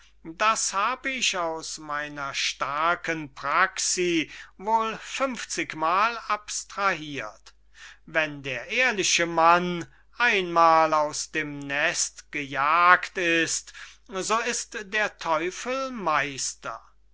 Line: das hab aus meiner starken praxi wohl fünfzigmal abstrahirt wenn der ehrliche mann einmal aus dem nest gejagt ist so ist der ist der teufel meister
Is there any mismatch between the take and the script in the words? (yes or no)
yes